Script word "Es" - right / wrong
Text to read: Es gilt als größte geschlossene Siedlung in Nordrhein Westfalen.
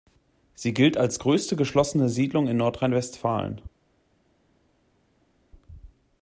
wrong